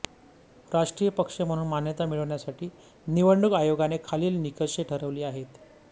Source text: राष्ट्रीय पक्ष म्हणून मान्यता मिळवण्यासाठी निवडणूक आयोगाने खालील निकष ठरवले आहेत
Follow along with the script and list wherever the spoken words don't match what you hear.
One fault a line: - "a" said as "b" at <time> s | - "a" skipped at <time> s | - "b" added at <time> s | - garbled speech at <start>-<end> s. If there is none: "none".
none